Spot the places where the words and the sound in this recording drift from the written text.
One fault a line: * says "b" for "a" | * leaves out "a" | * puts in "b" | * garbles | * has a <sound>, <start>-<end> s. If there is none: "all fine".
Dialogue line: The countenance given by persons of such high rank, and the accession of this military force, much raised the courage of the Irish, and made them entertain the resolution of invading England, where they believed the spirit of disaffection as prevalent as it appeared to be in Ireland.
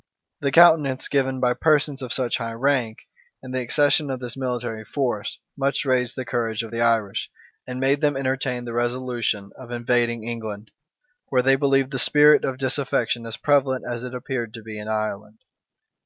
all fine